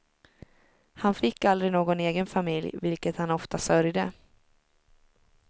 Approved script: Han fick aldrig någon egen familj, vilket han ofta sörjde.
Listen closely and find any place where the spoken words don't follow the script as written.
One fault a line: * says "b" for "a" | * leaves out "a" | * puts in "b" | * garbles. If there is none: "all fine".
all fine